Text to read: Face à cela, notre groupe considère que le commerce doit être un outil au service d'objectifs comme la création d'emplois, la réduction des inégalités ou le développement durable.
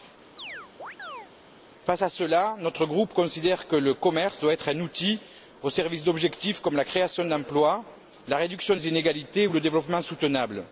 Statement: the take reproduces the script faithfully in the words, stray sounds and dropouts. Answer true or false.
false